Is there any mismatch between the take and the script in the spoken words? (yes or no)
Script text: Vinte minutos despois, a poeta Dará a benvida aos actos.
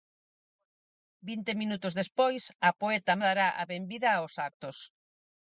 no